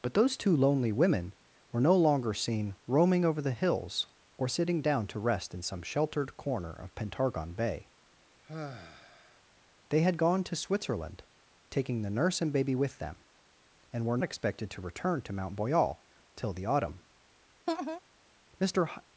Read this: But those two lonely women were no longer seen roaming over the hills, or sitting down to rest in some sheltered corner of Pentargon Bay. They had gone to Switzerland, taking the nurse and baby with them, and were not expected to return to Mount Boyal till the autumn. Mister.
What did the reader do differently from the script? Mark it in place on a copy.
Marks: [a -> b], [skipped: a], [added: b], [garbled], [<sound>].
But those two lonely women were no longer seen roaming over the hills, or sitting down to rest in some sheltered corner of Pentargon Bay. [sigh] They had gone to Switzerland, taking the nurse and baby with them, and were [skipped: not] expected to return to Mount Boyal till the autumn. [laugh] Mister.